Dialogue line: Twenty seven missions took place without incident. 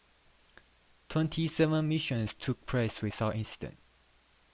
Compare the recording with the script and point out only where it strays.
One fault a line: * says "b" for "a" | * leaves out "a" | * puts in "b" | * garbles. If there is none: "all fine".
all fine